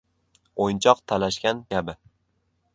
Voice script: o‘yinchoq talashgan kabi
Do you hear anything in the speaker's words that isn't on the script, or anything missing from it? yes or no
no